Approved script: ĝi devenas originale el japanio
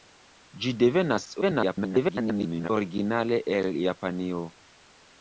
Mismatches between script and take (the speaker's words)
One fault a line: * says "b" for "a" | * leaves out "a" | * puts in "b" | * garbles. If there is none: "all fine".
* garbles